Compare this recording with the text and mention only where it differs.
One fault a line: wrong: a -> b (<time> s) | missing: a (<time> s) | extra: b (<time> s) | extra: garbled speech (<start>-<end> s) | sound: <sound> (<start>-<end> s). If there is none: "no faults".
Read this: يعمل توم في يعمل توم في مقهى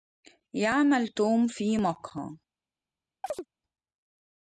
missing: يعمل توم في (1.8 s)
sound: chirp (3.2-3.5 s)